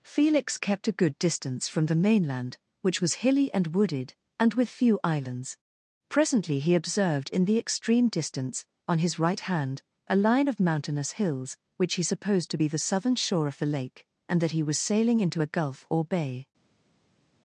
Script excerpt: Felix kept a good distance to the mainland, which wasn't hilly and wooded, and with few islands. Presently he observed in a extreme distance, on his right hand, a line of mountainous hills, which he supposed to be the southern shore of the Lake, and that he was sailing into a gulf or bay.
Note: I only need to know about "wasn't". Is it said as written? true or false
false